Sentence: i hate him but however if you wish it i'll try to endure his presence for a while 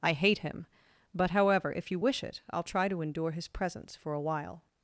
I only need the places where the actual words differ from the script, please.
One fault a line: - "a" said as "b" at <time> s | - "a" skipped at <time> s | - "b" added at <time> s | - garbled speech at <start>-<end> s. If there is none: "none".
none